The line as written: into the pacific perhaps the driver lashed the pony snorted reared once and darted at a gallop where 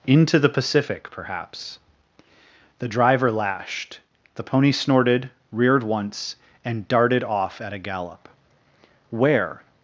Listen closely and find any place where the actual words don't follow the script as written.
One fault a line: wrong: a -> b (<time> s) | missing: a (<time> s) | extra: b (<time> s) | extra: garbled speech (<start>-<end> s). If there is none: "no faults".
extra: off (7.2 s)